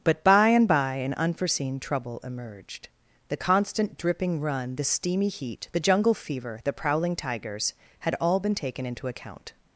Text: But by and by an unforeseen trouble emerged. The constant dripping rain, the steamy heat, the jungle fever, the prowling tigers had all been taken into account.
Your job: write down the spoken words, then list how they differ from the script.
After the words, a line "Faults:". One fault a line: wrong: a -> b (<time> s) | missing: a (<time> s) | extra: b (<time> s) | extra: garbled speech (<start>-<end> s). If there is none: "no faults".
But by and by an unforeseen trouble emerged. The constant dripping run, the steamy heat, the jungle fever, the prowling tigers had all been taken into account.
Faults:
wrong: rain -> run (4.4 s)